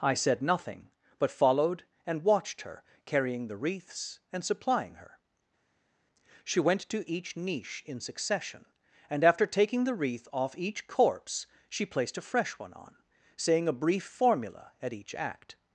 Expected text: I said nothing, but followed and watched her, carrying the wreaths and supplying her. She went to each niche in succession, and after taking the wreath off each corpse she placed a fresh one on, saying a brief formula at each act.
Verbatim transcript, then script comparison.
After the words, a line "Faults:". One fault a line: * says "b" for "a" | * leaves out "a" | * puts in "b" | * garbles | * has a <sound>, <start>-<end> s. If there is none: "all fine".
I said nothing, but followed and watched her, carrying the wreaths and supplying her. She went to each niche in succession, and after taking the wreath off each corpse she placed a fresh one on, saying a brief formula at each act.
Faults:
all fine